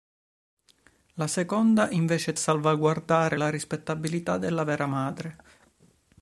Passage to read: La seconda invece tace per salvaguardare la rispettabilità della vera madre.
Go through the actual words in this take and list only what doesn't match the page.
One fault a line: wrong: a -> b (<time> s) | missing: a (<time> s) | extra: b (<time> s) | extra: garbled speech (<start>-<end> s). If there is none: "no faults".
missing: tace per (2.4 s)